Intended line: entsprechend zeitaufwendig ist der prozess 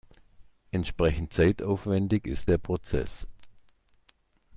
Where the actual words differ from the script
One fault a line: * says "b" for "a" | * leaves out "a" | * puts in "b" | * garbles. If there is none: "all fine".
all fine